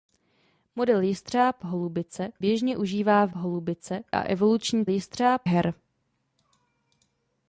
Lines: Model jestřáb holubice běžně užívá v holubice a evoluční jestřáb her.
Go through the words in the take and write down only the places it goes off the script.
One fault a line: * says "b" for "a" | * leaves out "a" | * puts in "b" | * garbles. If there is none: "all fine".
all fine